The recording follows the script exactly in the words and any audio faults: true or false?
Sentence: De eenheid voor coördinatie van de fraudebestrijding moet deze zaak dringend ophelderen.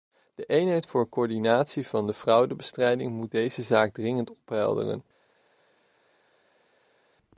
true